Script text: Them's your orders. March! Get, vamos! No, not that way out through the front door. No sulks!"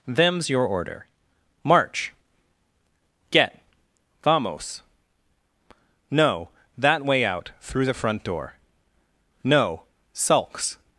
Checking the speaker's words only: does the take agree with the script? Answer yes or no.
no